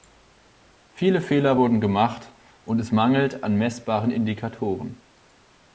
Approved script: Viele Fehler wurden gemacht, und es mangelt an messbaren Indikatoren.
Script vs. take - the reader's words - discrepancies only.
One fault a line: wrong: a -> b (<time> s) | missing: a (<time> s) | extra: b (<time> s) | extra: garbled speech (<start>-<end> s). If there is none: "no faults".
no faults